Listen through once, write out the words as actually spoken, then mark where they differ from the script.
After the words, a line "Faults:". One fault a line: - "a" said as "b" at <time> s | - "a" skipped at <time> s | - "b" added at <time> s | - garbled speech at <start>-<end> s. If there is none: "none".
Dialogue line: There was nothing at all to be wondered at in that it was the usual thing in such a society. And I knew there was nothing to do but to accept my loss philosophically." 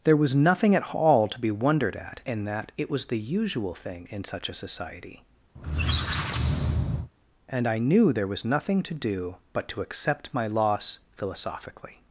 There was nothing at all to be wondered at in that it was the usual thing in such a society. And I knew there was nothing to do but to accept my loss philosophically."
Faults:
none